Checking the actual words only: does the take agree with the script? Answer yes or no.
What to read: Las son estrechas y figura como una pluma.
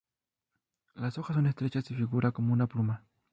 no